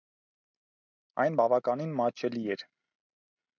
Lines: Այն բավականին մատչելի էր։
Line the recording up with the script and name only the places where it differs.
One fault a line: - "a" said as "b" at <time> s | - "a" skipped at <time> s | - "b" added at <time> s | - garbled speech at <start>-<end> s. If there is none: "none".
none